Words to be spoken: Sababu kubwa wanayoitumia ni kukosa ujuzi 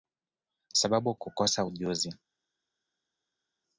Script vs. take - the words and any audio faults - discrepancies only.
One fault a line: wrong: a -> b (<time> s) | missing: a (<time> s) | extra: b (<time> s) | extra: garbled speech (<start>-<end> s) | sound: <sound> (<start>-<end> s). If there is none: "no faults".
missing: kubwa wanayoitumia ni (1.1 s)